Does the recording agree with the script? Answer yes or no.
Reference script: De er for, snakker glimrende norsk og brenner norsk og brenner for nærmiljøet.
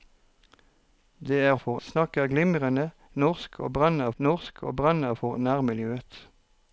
yes